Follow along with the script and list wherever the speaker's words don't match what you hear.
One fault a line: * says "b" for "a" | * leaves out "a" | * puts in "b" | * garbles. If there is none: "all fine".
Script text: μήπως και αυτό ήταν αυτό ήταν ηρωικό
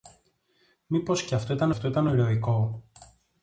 all fine